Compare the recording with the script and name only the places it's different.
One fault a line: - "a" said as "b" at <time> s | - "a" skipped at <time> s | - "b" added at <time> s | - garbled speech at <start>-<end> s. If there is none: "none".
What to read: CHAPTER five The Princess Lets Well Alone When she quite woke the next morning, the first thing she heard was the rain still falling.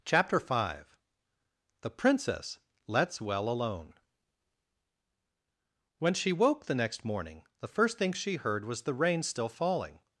- "quite" skipped at 6.3 s